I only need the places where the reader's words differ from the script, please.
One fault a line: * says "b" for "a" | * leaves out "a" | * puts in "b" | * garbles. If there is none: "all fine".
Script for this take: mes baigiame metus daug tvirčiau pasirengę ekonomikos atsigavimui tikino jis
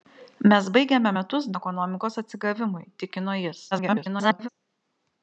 * leaves out "daug tvirčiau pasirengę"
* garbles